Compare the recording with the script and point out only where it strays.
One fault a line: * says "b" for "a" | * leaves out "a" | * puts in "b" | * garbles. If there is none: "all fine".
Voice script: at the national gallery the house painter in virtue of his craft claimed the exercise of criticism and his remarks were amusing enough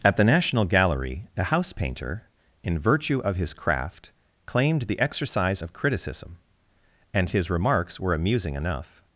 all fine